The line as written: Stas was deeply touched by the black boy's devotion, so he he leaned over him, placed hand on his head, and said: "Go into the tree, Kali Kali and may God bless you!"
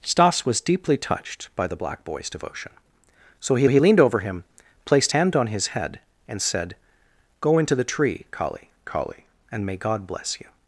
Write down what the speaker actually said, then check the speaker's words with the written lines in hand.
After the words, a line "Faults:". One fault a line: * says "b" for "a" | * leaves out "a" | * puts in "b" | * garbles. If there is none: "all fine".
Stas was deeply touched by the black boy's devotion, so he he leaned over him, placed hand on his head, and said: "Go into the tree, Kali Kali and may God bless you!"
Faults:
all fine